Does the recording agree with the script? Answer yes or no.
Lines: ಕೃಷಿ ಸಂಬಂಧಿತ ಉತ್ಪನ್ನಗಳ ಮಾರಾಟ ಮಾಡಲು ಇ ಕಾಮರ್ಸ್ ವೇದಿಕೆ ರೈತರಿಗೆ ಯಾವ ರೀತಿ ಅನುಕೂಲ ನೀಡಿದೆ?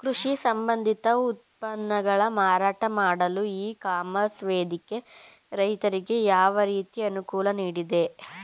yes